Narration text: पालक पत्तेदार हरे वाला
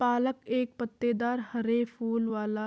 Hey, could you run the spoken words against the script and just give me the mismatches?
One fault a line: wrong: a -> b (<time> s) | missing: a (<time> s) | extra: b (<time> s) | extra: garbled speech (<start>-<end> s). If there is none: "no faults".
extra: एक (0.6 s)
extra: फूल (1.9 s)